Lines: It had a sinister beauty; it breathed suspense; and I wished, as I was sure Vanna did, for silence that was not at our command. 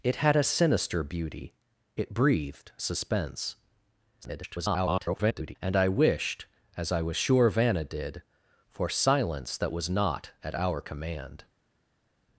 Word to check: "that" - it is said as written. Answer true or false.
true